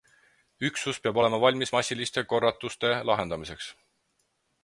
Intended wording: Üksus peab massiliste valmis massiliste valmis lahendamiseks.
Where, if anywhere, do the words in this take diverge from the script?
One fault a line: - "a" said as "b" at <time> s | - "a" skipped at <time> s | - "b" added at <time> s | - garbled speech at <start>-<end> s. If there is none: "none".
- "massiliste" said as "olema" at 1.2 s
- "valmis" said as "korratuste" at 2.3 s